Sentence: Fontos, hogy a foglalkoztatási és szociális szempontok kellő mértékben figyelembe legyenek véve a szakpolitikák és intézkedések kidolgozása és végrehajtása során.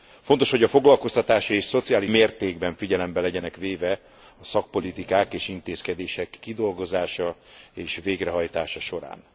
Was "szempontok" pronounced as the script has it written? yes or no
no